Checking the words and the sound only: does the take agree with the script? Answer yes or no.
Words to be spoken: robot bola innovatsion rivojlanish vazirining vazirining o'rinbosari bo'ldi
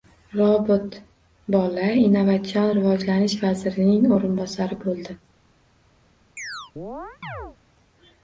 no